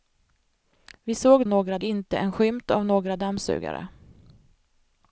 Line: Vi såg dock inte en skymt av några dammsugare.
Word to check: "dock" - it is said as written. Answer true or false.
false